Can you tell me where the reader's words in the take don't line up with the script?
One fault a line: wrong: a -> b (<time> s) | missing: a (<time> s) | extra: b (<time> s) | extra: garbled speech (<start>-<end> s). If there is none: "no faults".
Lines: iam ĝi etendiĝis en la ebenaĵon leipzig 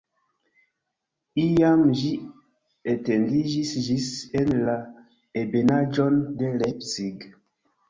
extra: ĝis (3.9 s)
extra: de (6.4 s)